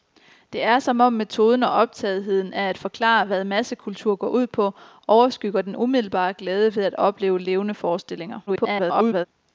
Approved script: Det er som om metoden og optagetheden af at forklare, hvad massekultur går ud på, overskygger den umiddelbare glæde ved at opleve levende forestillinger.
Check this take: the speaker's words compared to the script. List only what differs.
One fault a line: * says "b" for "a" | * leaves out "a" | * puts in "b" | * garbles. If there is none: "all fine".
* garbles